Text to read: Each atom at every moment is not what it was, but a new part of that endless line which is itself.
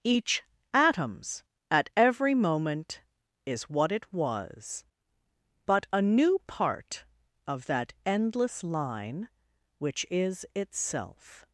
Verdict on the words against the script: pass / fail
fail